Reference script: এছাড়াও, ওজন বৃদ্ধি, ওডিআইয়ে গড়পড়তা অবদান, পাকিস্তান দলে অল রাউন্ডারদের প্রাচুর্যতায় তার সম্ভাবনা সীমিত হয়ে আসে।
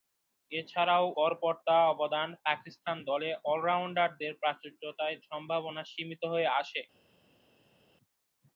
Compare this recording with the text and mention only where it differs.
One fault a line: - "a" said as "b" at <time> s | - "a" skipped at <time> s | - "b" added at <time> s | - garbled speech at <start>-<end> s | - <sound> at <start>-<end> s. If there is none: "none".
- "ওজন বৃদ্ধি ওডিআইয়ে" skipped at 1.1 s
- "তার" skipped at 5.2 s